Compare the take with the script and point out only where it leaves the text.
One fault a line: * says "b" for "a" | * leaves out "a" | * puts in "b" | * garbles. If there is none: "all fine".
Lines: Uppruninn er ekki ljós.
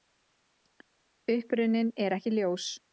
all fine